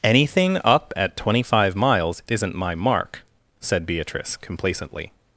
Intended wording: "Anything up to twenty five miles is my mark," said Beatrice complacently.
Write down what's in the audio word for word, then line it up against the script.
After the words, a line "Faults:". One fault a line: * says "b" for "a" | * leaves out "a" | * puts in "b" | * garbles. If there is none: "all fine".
"Anything up at twenty five miles isn't my mark," said Beatrice complacently.
Faults:
* says "at" for "to"
* says "isn't" for "is"